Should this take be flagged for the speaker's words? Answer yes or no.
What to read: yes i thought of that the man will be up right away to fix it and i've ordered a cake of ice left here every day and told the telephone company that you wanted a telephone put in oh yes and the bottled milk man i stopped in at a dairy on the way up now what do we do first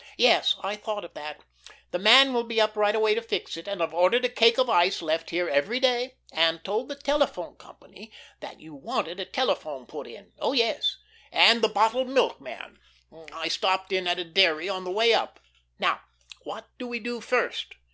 no